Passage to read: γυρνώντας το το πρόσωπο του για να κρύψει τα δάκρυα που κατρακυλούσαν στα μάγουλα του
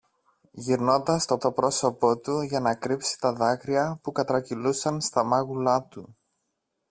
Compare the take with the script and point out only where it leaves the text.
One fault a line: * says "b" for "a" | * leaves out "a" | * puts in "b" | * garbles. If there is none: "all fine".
all fine